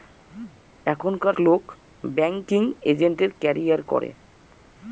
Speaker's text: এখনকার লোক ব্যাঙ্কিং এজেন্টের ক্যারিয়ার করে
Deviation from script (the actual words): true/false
false